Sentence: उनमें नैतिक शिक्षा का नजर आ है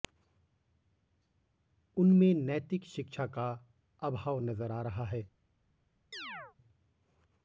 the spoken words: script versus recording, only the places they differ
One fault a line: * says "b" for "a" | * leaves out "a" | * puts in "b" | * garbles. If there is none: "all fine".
* puts in "अभाव"
* puts in "रहा"